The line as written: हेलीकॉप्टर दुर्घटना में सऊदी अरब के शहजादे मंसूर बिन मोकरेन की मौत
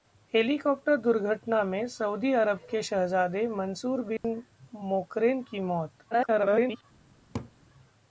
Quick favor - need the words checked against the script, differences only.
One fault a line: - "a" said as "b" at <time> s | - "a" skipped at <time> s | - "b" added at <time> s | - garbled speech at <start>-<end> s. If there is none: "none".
- garbled speech at 6.1-6.8 s